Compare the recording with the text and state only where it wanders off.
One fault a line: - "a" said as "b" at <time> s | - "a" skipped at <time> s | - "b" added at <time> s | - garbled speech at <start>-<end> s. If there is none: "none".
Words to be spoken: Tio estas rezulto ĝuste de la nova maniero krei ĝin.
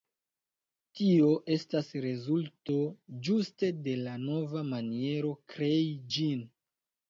none